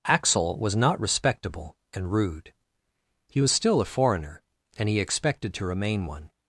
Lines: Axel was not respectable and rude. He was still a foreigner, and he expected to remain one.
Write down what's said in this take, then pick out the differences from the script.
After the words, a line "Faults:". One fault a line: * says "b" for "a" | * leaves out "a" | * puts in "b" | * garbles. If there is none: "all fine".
Axel was not respectable and rude. He was still a foreigner, and he expected to remain one.
Faults:
all fine